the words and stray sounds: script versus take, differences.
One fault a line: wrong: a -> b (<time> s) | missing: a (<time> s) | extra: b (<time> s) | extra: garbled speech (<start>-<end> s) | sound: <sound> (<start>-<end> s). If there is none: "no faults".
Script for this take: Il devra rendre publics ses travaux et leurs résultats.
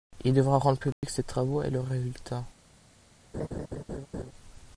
sound: dropout (0.9-1.0 s)
sound: laugh (3.3-4.3 s)